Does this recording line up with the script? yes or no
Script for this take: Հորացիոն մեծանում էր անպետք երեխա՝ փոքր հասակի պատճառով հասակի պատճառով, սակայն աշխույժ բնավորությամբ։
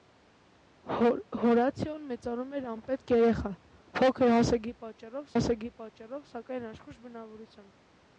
yes